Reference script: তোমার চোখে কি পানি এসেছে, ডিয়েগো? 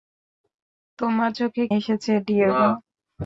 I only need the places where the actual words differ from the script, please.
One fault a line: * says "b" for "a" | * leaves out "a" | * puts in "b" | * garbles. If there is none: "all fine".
* leaves out "কি পানি"